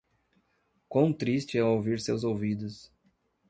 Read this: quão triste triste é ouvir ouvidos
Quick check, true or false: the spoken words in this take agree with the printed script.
false